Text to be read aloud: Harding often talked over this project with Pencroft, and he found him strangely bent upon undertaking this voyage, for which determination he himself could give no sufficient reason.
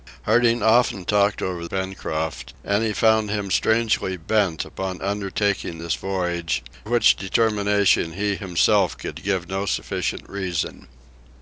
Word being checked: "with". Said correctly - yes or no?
no